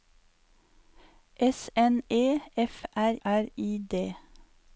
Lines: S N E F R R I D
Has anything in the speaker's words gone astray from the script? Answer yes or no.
no